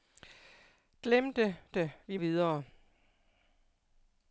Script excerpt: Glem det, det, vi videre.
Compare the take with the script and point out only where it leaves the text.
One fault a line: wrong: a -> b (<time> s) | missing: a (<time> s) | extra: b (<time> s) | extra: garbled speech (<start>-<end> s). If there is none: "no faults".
no faults